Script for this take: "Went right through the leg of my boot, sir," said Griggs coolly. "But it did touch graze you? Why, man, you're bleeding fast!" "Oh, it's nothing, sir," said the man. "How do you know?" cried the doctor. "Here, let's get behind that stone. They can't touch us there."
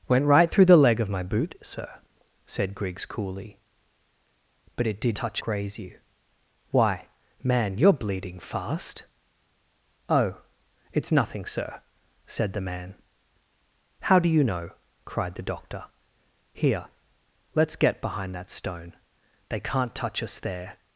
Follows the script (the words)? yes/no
yes